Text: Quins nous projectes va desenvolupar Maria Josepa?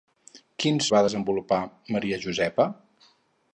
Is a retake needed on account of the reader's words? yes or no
yes